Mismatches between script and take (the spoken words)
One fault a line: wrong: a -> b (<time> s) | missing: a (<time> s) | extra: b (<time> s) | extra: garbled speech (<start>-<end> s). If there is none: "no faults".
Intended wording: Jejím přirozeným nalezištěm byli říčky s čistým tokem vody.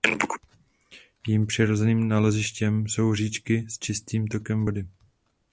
wrong: byli -> jsou (2.9 s)